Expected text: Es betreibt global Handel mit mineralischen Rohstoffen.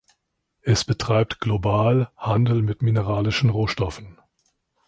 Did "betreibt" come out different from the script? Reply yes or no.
no